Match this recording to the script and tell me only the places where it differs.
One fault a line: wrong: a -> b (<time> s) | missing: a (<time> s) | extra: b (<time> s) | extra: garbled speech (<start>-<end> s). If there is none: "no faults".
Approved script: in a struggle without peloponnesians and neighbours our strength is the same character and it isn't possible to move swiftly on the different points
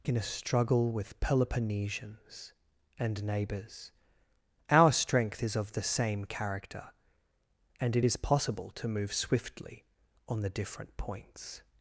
wrong: without -> with (0.9 s)
extra: of (5.6 s)
wrong: isn't -> is (8.0 s)